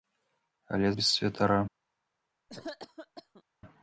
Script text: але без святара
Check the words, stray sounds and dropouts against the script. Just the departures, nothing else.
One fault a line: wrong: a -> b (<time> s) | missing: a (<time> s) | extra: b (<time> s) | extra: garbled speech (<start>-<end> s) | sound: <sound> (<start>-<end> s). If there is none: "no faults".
sound: cough (2.5-3.4 s)